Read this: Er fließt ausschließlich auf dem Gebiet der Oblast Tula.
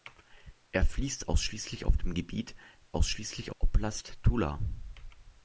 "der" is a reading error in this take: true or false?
true